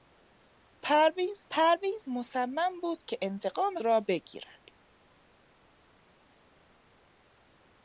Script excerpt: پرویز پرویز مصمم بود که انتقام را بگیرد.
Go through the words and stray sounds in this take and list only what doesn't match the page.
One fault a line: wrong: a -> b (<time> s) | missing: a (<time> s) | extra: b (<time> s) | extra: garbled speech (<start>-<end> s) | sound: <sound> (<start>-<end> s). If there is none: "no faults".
no faults